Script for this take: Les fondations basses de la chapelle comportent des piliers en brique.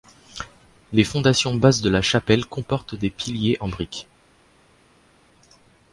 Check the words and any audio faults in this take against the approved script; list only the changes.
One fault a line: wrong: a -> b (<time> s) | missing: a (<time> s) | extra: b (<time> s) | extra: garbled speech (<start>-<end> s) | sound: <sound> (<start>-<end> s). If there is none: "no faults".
no faults